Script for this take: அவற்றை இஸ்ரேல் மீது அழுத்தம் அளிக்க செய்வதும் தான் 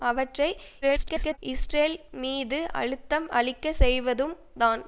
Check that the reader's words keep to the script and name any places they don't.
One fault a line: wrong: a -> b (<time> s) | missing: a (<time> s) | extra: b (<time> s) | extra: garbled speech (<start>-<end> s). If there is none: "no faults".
extra: garbled speech (0.8-1.4 s)